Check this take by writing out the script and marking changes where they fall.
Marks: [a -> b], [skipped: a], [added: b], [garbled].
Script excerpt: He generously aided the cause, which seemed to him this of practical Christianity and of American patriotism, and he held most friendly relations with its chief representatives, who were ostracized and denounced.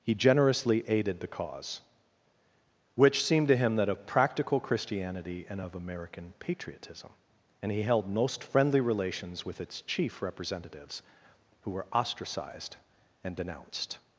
He generously aided the cause, which seemed to him [this -> that] of practical Christianity and of American patriotism, and he held most friendly relations with its chief representatives, who were ostracized and denounced.